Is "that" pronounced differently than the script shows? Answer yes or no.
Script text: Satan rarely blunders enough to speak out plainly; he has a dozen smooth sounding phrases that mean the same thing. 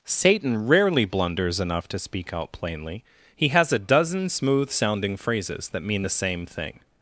no